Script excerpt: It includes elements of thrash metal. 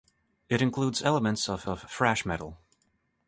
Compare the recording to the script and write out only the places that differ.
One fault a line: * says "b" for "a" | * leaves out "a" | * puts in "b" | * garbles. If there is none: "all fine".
* puts in "of"